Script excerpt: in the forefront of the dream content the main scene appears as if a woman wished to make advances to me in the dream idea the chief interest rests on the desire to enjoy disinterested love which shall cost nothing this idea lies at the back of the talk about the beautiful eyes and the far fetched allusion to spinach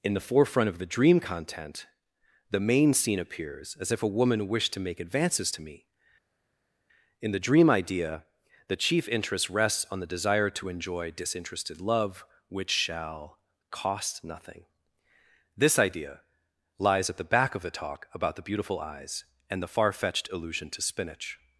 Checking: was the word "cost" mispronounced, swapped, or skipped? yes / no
no